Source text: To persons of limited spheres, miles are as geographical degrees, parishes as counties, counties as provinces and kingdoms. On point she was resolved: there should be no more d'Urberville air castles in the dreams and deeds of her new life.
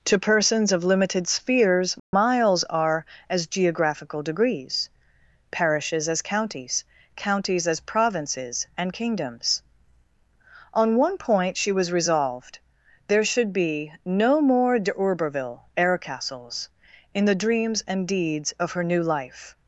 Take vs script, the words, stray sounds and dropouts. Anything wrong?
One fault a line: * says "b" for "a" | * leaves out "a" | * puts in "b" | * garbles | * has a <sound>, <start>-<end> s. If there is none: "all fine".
* has a dropout, 2.0-2.1 s
* puts in "one"